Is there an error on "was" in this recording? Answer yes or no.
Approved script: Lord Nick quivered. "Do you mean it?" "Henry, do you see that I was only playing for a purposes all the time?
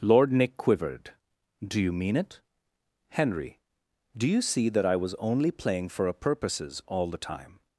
no